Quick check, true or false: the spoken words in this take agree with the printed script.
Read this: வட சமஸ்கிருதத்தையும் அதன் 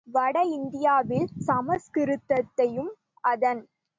false